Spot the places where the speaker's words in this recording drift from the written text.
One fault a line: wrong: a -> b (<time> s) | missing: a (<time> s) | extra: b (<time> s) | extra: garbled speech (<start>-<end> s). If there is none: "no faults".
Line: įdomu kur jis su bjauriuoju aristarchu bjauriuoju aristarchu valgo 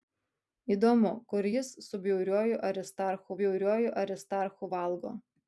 no faults